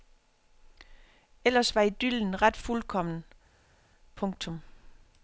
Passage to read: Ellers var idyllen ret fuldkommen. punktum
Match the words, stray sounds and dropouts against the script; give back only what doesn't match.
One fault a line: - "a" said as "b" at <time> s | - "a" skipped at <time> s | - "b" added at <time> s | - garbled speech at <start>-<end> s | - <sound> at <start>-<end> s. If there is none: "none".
none